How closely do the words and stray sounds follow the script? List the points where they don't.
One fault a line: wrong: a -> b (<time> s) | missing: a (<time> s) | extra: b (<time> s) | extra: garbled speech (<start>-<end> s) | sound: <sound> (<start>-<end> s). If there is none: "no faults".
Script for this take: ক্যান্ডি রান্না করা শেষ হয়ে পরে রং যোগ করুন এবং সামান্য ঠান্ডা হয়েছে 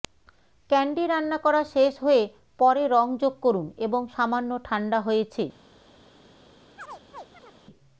sound: chirp (6.8-7.6 s)